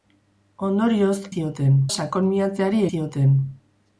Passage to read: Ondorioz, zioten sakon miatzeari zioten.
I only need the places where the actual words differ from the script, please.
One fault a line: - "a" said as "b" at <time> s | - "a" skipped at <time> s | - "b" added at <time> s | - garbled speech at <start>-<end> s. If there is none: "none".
none